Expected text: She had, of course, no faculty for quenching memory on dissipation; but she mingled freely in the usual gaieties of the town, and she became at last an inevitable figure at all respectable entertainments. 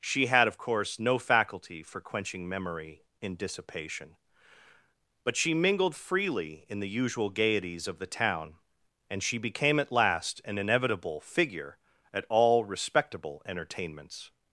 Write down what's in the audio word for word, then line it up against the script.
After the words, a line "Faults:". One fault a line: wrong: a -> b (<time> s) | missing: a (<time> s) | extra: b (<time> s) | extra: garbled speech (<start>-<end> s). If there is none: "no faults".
She had, of course, no faculty for quenching memory in dissipation; but she mingled freely in the usual gaieties of the town, and she became at last an inevitable figure at all respectable entertainments.
Faults:
wrong: on -> in (3.2 s)